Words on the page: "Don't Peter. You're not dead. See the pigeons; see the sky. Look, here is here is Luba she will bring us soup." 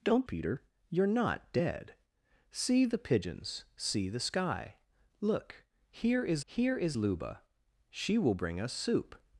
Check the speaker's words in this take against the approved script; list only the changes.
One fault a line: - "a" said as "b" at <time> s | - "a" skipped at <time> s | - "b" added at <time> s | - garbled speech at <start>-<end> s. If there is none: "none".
none